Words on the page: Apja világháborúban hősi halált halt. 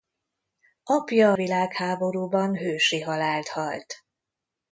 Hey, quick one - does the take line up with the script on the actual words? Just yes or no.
yes